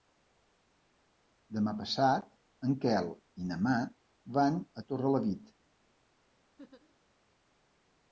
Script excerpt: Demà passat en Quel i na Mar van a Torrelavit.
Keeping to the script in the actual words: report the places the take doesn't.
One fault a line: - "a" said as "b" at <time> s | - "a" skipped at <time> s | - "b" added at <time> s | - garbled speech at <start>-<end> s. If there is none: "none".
none